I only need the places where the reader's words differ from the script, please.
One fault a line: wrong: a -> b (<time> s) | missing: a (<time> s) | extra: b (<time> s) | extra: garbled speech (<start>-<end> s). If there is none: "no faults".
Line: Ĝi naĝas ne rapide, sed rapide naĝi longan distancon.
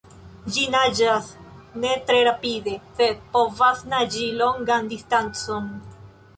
extra: tre (2.1 s)
wrong: rapide -> povas (3.4 s)